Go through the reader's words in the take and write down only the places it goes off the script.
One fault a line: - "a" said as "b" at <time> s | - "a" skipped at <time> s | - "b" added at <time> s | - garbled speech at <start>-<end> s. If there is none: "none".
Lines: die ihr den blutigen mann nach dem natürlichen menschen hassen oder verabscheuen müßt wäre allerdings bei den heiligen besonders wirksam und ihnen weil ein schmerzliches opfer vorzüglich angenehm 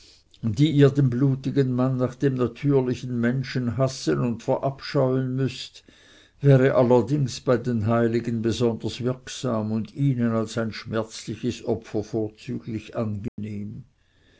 - "oder" said as "und" at 4.2 s
- "weil" said as "als" at 10.3 s